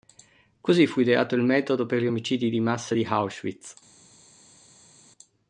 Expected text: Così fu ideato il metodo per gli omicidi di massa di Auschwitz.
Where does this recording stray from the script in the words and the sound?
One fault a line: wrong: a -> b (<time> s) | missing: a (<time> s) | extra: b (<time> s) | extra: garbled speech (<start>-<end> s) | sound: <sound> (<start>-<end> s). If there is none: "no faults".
no faults